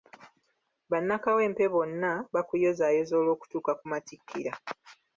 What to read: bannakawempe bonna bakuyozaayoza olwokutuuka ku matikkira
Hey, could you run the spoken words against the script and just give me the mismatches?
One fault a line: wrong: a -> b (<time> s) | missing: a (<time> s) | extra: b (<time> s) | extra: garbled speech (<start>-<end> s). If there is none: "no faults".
no faults